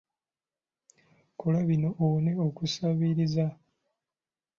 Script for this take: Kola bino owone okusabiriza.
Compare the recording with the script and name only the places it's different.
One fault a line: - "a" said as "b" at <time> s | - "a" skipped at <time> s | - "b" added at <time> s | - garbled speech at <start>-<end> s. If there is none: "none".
none